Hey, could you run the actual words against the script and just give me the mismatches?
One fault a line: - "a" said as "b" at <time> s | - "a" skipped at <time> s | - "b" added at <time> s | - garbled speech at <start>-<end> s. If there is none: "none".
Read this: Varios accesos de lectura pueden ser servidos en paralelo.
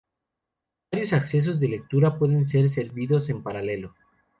none